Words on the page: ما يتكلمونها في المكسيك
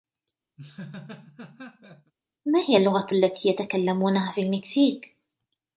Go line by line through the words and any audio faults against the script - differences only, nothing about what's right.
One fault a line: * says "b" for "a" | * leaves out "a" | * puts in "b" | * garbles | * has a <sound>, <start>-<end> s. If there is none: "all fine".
* has a laugh, 0.6-2.1 s
* puts in "هي اللغة التي"